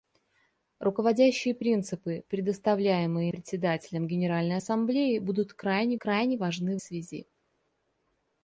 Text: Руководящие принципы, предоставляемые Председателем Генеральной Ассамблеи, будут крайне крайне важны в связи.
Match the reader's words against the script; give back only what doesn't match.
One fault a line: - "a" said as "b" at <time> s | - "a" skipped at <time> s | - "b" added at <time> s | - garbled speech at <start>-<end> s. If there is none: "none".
none